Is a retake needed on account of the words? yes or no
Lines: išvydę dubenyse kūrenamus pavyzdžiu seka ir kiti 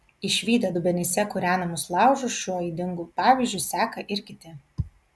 yes